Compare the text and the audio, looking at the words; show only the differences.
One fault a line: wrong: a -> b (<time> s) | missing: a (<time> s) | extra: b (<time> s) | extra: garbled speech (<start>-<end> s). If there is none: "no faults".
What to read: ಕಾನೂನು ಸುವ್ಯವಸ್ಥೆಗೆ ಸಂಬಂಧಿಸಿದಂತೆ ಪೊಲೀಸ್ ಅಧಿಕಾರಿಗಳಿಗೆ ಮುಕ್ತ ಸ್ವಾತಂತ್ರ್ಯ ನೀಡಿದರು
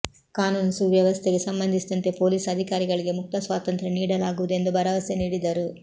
extra: ನೀಡಲಾಗುವುದು ಎಂದು ಭರವಸೆ (4.0 s)